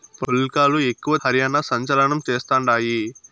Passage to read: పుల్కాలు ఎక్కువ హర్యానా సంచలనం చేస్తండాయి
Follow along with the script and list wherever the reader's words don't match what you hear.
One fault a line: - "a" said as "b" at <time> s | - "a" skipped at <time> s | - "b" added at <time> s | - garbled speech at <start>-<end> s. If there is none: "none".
none